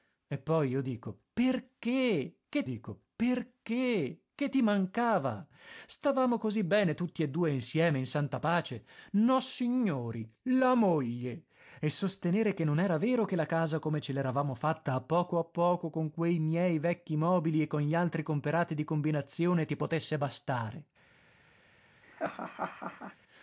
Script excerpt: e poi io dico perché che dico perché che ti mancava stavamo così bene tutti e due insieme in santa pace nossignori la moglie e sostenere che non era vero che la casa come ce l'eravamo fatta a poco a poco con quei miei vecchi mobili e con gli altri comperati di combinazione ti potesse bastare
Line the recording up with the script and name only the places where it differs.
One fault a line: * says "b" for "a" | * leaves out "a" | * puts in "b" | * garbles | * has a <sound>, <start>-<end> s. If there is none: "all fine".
* has a laugh, 22.0-23.2 s